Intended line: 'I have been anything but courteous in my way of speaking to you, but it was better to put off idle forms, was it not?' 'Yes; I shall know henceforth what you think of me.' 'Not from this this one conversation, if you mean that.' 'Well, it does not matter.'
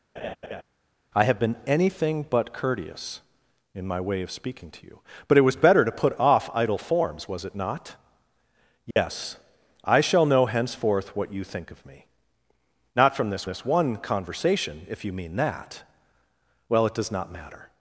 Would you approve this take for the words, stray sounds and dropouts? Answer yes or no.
no